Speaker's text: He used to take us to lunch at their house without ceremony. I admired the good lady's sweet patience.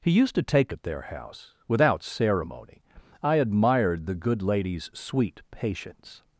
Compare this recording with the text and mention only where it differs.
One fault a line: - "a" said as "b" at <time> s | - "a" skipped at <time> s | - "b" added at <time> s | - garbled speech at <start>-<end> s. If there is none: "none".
- "us to lunch" skipped at 0.7 s